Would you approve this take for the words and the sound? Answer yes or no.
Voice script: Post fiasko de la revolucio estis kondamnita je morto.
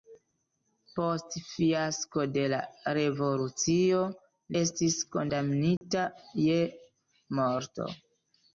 no